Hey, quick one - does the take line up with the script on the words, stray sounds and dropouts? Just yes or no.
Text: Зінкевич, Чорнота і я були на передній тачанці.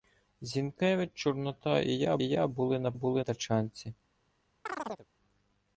no